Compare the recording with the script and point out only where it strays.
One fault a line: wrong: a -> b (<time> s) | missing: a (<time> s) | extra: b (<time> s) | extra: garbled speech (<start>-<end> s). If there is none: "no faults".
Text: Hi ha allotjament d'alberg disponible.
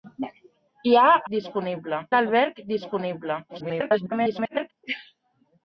wrong: allotjament -> disponible (1.3 s)
extra: garbled speech (3.5-4.7 s)